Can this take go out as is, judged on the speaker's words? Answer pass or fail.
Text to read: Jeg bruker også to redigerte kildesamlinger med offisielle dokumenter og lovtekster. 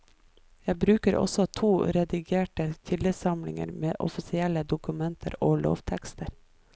pass